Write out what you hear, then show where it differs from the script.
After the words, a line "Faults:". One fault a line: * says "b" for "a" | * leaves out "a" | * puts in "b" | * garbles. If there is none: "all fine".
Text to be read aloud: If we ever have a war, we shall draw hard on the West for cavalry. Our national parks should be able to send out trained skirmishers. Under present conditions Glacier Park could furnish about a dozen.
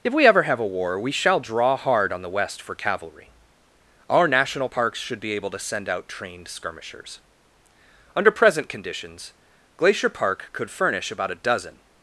If we ever have a war, we shall draw hard on the West for cavalry. Our national parks should be able to send out trained skirmishers. Under present conditions Glacier Park could furnish about a dozen.
Faults:
all fine